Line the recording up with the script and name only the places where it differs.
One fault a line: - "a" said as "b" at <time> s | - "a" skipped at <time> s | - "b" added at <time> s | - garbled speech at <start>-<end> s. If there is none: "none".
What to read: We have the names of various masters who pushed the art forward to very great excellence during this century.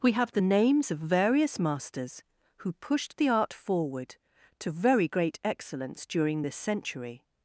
none